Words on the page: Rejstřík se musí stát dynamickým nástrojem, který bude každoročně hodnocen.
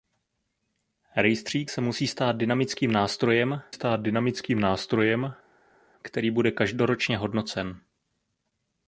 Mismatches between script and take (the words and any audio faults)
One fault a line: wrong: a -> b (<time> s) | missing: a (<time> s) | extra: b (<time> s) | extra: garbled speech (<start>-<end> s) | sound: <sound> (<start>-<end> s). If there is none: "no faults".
extra: stát dynamickým nástrojem (3.7 s)